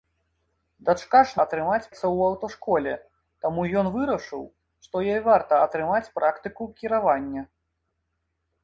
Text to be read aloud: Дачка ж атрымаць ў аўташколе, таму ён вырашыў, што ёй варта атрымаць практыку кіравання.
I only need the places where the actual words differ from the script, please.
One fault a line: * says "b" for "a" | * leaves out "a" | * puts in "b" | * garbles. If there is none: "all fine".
all fine